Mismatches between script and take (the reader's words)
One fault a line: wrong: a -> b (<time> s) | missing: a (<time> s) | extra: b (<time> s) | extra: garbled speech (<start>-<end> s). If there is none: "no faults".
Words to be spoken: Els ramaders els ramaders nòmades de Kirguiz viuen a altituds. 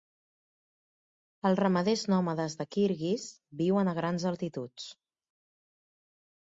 missing: els ramaders (2.1 s)
extra: grans (4.0 s)